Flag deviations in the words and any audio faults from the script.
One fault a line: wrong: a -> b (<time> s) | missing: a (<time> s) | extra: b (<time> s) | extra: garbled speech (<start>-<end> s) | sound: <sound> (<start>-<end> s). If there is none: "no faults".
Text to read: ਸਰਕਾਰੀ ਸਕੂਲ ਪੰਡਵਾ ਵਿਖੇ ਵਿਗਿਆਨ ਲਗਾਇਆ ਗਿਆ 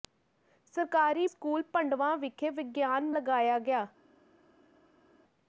no faults